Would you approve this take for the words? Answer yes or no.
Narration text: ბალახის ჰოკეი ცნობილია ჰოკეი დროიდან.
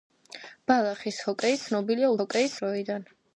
yes